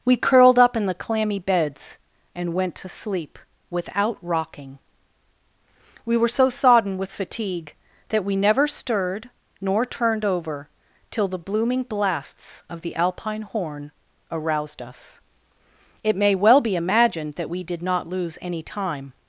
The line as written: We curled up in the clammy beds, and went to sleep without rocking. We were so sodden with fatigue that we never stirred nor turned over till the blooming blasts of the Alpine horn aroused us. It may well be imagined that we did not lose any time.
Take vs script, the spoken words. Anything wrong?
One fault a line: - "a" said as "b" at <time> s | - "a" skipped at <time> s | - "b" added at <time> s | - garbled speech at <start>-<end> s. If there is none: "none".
none